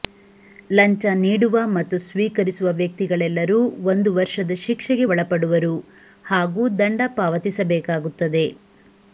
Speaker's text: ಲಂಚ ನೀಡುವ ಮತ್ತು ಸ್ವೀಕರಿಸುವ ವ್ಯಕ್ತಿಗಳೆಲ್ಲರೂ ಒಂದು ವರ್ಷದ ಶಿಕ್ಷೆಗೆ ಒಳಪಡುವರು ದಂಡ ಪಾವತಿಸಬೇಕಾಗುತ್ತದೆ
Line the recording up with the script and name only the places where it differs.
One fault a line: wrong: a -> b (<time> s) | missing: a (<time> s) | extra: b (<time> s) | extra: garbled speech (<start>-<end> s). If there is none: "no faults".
extra: ಹಾಗೂ (6.2 s)